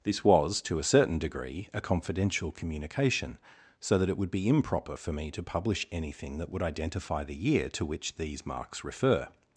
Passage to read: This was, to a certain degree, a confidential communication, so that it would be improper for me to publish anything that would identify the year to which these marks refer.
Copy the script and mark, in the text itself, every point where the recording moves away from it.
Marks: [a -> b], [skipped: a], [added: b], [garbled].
This was, to a certain degree, a confidential communication, so that it would be improper for me to publish anything that would identify the year to which these marks refer.